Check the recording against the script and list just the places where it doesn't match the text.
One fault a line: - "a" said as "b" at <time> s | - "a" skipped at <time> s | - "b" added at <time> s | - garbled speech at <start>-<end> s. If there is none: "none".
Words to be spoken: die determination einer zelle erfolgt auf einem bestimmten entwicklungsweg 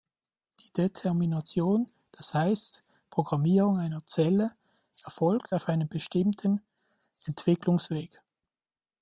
- "das heißt programmierung" added at 2.1 s